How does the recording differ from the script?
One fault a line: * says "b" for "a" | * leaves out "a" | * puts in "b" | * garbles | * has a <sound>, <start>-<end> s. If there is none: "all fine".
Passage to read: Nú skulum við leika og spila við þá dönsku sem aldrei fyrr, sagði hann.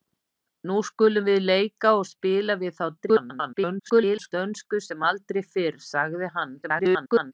* garbles
* garbles